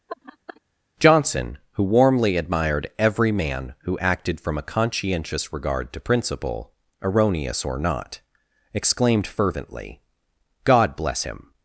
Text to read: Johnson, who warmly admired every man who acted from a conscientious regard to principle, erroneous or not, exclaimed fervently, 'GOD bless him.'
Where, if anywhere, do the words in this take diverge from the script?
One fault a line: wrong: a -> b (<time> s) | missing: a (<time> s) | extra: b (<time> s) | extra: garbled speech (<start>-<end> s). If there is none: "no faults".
no faults